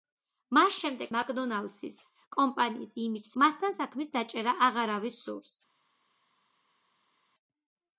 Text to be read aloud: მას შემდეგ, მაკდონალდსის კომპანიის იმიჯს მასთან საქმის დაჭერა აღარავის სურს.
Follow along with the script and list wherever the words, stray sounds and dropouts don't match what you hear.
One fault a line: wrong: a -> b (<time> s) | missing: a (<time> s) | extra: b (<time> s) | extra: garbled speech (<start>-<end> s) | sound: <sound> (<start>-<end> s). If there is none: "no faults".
no faults